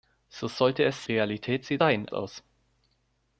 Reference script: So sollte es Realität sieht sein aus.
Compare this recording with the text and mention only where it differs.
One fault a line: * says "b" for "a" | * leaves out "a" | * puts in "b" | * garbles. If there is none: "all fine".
all fine